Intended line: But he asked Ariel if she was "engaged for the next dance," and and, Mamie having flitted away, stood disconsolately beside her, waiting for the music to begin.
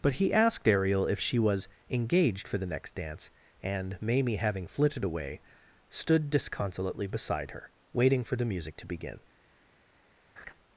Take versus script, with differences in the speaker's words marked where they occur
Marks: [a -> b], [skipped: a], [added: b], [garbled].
But he asked Ariel if she was "engaged for the next dance," and [skipped: and,] Mamie having flitted away, stood disconsolately beside her, waiting for the music to begin.